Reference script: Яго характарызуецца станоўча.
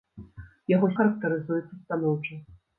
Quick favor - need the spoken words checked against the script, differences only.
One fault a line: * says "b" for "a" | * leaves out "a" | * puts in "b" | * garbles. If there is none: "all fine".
all fine